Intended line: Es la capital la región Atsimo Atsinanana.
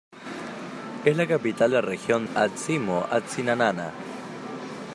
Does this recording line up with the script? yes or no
yes